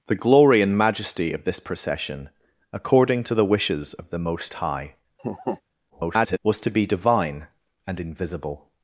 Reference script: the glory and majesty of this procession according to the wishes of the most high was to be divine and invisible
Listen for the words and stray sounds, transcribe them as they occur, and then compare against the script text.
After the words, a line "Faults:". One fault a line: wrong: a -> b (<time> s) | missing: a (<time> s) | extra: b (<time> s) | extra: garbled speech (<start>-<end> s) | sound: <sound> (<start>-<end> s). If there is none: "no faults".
the glory and majesty of this procession according to the wishes of the most high [garbled] was to be divine and invisible
Faults:
sound: laugh (5.2-5.6 s)
extra: garbled speech (5.9-6.4 s)